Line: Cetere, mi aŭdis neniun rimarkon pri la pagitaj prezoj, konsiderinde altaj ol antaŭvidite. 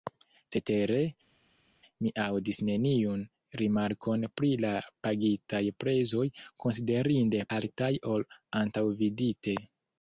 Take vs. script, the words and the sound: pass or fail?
pass